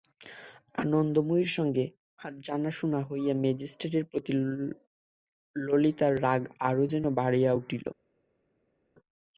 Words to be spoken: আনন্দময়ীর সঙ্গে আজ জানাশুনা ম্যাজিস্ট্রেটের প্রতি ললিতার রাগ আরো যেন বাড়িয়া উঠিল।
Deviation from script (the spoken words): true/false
true